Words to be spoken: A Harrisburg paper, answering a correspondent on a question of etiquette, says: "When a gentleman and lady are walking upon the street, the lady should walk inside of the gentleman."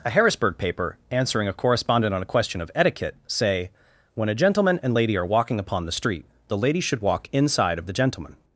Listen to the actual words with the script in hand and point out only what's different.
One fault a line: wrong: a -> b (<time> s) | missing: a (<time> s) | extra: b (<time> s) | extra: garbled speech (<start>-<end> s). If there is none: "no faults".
wrong: says -> say (3.3 s)